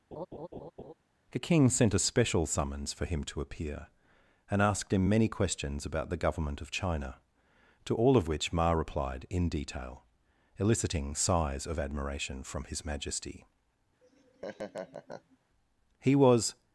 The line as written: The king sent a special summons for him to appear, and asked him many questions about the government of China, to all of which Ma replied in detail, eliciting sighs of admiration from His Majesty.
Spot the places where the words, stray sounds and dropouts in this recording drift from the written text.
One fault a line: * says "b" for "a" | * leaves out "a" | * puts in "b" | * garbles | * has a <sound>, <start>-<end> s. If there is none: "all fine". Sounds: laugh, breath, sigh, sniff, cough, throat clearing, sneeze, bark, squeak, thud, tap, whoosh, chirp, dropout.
* has a laugh, 0.1-0.9 s
* has a laugh, 14.0-15.4 s
* puts in "He was"